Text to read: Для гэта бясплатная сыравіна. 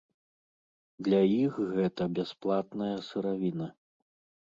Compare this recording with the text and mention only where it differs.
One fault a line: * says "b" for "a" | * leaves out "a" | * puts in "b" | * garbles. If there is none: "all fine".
* puts in "іх"